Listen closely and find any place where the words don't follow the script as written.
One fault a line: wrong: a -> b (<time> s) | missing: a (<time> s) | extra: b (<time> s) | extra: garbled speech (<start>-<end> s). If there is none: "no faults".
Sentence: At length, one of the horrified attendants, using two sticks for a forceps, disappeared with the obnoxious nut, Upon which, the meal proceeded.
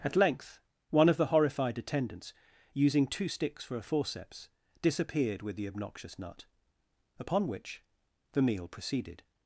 no faults